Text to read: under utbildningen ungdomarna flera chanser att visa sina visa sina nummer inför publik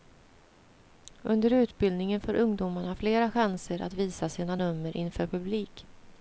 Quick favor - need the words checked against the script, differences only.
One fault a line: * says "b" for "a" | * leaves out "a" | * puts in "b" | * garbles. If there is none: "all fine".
* puts in "får"
* leaves out "visa sina"